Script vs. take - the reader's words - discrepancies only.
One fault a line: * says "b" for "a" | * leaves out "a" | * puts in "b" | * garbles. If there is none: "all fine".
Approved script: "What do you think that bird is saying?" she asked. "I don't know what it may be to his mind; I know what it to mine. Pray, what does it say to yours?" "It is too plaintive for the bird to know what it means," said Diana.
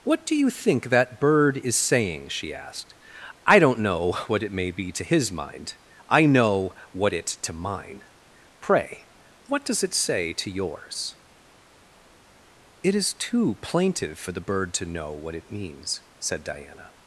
all fine